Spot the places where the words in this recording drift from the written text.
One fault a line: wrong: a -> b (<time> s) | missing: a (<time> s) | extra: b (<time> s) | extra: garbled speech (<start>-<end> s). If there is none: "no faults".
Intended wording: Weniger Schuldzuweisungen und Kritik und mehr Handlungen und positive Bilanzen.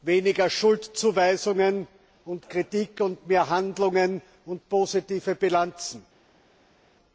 no faults